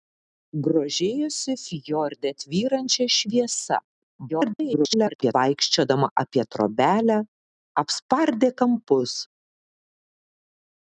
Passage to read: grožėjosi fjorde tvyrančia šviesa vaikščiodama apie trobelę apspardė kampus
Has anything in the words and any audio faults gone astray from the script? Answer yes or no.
yes